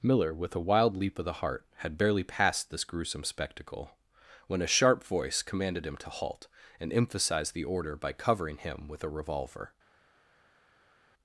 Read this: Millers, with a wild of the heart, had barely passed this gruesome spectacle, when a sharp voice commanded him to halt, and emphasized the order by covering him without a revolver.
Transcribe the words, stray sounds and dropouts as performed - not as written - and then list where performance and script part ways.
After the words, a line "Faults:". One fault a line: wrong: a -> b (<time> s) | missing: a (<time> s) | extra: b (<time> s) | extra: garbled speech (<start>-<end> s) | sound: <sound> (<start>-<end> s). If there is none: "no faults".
Miller, with a wild leap of the heart, had barely passed this gruesome spectacle, when a sharp voice commanded him to halt, and emphasized the order by covering him with a revolver.
Faults:
wrong: Millers -> Miller (0.0 s)
extra: leap (1.0 s)
wrong: without -> with (8.9 s)